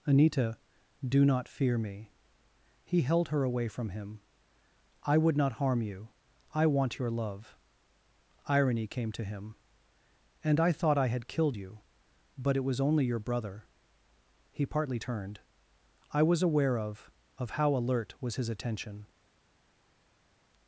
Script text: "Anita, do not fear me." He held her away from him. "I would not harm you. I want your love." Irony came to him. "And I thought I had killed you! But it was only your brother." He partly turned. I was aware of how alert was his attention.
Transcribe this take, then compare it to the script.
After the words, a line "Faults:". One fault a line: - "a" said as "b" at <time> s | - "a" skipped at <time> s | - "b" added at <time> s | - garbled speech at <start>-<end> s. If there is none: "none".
"Anita, do not fear me." He held her away from him. "I would not harm you. I want your love." Irony came to him. "And I thought I had killed you! But it was only your brother." He partly turned. I was aware of of how alert was his attention.
Faults:
- "of" added at 17.4 s